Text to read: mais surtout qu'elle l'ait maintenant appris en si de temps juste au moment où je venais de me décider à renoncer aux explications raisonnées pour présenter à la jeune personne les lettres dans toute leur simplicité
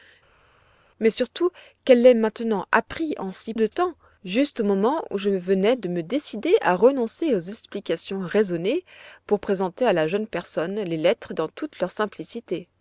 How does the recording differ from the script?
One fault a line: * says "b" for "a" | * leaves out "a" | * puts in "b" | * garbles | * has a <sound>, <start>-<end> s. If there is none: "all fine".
all fine